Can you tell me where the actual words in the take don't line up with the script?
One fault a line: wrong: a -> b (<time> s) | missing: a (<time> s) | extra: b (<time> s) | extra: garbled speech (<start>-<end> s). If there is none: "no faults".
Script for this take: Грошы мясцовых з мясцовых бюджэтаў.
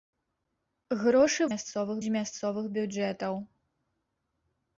no faults